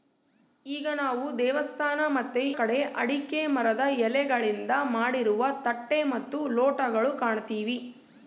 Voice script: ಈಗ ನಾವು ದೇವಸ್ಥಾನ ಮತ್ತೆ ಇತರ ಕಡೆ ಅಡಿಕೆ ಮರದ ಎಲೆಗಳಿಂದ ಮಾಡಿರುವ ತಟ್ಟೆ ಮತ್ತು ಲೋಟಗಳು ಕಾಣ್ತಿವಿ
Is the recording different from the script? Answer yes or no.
yes